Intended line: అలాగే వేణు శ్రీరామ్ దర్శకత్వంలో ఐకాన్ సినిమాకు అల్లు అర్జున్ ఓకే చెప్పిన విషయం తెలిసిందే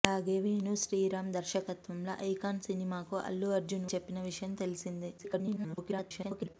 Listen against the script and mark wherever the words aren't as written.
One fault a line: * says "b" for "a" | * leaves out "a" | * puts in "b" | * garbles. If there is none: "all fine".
* leaves out "ఓకే"
* garbles